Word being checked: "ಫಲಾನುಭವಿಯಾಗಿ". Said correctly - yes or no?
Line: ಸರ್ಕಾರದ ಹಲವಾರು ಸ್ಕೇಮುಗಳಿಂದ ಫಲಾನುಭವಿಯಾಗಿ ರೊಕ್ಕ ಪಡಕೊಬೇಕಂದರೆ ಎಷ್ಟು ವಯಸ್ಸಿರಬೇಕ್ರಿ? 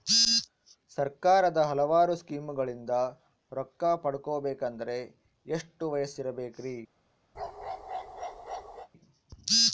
no